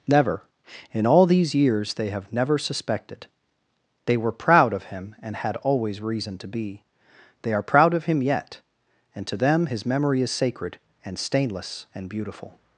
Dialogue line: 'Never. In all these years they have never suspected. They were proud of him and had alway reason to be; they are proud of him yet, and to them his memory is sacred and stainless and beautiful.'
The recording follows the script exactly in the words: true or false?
false